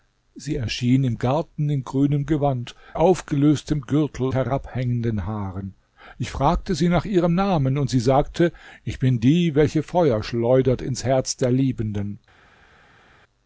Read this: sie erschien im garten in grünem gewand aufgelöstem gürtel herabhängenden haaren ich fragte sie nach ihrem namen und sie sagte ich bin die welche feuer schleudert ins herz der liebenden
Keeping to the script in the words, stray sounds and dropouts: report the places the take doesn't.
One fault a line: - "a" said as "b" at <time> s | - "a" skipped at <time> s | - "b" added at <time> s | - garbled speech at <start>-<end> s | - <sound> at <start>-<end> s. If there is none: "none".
none